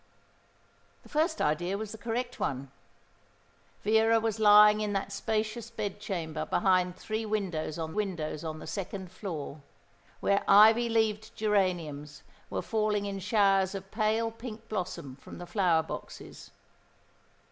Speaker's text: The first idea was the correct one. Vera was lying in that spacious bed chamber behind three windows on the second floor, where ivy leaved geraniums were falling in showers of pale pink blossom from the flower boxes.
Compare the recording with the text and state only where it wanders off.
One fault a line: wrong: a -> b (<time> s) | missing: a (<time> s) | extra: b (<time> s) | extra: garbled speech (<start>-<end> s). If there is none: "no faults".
extra: windows on (7.9 s)